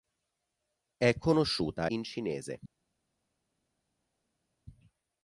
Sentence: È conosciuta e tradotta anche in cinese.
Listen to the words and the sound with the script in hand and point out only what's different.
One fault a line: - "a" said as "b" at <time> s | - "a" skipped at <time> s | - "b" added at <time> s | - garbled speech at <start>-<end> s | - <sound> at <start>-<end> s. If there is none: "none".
- "e tradotta anche" skipped at 1.9 s